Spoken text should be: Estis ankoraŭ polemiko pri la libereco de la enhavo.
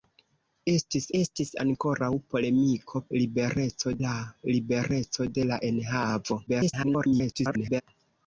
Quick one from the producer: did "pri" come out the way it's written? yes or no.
no